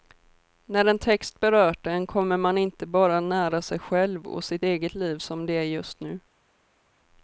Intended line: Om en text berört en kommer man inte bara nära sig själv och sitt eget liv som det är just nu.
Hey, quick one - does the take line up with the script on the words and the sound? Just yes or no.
no